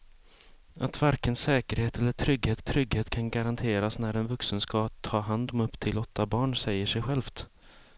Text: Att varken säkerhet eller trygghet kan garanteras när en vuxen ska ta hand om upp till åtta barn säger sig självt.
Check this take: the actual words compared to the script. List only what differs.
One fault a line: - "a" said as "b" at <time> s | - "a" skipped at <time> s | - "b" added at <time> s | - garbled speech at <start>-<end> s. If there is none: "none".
- "trygghet" added at 2.6 s